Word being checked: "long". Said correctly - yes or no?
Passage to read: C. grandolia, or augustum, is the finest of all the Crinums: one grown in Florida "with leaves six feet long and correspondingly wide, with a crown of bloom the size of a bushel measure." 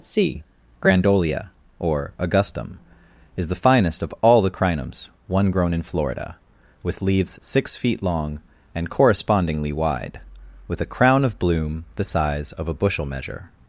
yes